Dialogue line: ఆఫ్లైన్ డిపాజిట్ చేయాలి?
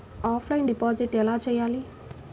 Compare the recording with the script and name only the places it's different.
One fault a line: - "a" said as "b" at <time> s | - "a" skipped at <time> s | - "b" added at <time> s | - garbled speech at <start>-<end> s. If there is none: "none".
- "ఎలా" added at 1.1 s